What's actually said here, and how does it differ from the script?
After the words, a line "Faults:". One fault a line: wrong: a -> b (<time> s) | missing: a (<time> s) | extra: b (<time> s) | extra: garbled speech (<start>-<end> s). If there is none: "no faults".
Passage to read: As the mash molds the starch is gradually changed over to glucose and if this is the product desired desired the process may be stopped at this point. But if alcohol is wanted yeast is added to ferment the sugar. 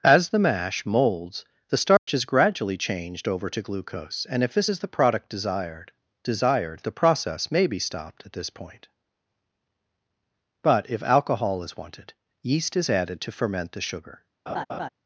As the mash molds the starch is gradually changed over to glucose and if this is the product desired desired the process may be stopped at this point. But if alcohol is wanted yeast is added to ferment the sugar.
Faults:
no faults